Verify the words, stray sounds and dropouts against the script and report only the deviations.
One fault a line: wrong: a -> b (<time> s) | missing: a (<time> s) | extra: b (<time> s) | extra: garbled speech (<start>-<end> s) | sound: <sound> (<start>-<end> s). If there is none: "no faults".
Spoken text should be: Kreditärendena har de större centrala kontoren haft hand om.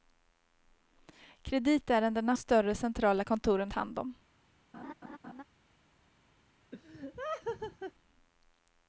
missing: har de (2.3 s)
missing: haft (3.7 s)
sound: laugh (4.7-5.4 s)
sound: laugh (6.7-7.9 s)